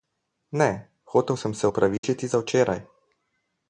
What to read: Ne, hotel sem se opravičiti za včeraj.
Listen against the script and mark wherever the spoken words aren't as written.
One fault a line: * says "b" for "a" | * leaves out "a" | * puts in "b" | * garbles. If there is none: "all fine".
all fine